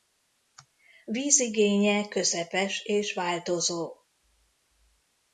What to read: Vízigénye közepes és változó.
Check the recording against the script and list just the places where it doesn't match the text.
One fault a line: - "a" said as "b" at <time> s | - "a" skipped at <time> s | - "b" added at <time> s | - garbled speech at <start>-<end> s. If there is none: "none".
none